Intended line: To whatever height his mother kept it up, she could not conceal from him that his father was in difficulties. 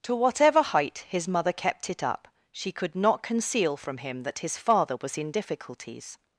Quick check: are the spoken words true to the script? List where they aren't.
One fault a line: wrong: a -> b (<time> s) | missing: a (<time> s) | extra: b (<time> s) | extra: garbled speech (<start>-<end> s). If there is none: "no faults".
no faults